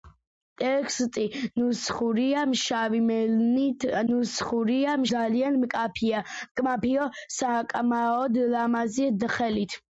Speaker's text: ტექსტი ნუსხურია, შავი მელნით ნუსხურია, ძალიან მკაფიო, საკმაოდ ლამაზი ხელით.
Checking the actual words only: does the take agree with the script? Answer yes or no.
yes